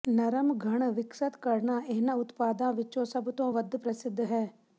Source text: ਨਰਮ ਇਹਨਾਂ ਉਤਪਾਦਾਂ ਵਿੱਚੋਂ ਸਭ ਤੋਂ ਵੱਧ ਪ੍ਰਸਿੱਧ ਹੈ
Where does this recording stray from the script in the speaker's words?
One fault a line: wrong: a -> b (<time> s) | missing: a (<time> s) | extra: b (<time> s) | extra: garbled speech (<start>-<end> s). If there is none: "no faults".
extra: ਘਣ ਵਿਕਸਤ ਕਰਨਾ (0.6 s)